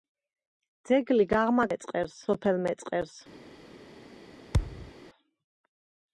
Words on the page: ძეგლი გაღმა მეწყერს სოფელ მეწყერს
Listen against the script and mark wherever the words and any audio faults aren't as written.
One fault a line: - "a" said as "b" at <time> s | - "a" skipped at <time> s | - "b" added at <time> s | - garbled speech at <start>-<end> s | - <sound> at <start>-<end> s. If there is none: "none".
- thud at 4.5-4.9 s